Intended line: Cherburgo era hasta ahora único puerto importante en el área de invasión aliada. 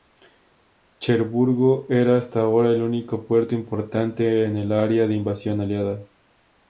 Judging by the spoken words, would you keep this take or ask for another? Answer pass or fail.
fail